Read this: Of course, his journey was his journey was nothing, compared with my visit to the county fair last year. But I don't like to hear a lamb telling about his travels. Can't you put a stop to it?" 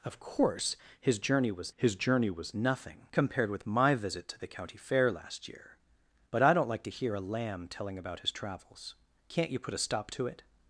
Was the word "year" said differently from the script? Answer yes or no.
no